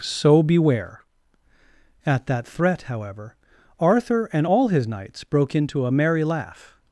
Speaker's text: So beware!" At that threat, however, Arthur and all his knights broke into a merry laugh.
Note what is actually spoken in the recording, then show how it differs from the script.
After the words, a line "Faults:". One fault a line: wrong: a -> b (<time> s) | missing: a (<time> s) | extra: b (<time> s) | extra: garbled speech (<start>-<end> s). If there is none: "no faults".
So beware!" At that threat, however, Arthur and all his knights broke into a merry laugh.
Faults:
no faults